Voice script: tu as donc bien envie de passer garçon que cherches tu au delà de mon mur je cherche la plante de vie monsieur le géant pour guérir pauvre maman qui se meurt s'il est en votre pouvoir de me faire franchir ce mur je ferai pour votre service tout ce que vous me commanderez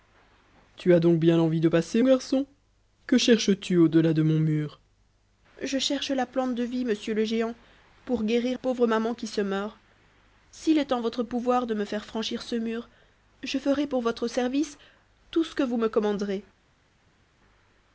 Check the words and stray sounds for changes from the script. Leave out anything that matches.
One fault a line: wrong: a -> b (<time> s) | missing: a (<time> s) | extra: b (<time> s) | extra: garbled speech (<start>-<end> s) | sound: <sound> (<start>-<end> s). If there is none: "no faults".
no faults